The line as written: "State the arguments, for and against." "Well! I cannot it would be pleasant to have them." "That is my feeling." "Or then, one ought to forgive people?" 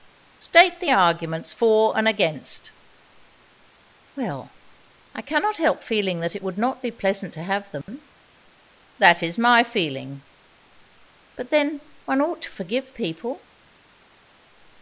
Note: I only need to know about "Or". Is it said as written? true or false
false